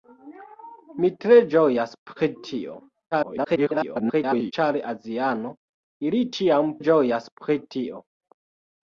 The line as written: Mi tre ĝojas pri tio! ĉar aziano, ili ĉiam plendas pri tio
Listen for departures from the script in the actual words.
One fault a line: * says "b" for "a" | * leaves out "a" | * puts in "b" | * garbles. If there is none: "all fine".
* garbles
* says "ĝojas" for "plendas"